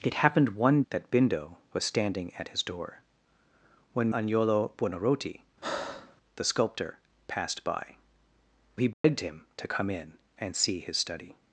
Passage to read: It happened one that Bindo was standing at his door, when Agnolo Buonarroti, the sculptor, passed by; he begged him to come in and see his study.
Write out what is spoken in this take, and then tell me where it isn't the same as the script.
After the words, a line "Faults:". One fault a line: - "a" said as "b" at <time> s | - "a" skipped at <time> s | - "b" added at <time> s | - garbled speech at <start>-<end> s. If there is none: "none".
It happened one that Bindo was standing at his door, when Agnolo Buonarroti, the sculptor, passed by; he begged him to come in and see his study.
Faults:
none